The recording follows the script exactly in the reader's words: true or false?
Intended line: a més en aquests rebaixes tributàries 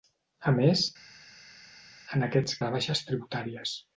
true